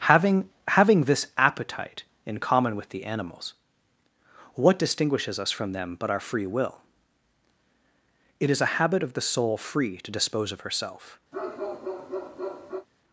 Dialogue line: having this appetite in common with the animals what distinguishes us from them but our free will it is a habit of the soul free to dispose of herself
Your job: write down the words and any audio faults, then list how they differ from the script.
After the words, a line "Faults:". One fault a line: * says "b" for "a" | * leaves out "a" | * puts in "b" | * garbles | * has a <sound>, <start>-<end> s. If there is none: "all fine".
having having this appetite in common with the animals what distinguishes us from them but our free will it is a habit of the soul free to dispose of herself
Faults:
* puts in "having"
* has a bark, 11.3-12.9 s